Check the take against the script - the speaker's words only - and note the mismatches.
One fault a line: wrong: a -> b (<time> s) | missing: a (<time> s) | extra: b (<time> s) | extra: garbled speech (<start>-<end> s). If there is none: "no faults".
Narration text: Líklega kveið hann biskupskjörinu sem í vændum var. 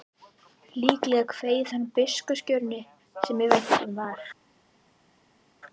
no faults